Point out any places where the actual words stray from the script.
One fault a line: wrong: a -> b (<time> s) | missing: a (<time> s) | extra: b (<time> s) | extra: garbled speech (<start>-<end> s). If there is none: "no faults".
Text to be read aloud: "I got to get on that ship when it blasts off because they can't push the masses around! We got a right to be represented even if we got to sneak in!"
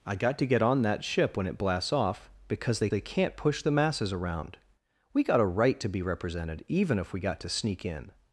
extra: they (2.9 s)